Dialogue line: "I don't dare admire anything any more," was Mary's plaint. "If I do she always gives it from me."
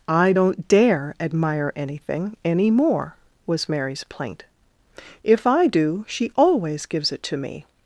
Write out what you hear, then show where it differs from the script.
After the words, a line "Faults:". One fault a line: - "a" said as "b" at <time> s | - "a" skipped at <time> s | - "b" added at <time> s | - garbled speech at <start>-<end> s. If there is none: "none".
"I don't dare admire anything any more," was Mary's plaint. "If I do she always gives it to me."
Faults:
- "from" said as "to" at 7.2 s